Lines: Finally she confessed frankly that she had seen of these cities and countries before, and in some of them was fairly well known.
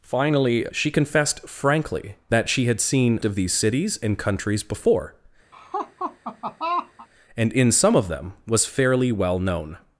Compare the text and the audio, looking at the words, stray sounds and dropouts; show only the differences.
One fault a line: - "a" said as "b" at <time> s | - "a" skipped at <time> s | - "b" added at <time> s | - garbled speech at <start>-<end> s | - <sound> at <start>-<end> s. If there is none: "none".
- laugh at 5.5-7.1 s